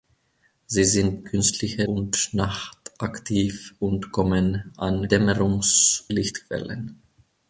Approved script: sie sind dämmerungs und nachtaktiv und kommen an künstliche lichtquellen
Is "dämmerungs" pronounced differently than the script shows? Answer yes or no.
yes